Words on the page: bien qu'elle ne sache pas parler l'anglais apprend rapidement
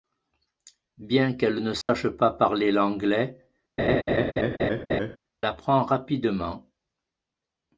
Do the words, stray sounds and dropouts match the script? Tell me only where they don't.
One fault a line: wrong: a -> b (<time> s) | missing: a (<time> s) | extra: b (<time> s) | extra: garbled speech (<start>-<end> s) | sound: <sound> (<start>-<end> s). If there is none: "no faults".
sound: dropout (1.8-1.9 s)
sound: laugh (3.8-5.2 s)